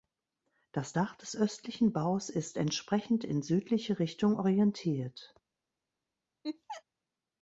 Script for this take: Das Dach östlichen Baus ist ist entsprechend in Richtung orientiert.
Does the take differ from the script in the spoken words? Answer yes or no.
yes